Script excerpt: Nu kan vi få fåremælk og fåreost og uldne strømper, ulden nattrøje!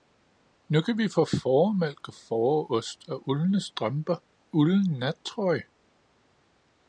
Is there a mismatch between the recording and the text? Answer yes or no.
no